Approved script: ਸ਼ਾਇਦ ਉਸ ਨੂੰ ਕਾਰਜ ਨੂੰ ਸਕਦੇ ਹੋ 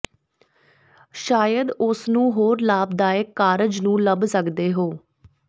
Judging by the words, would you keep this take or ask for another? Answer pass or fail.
fail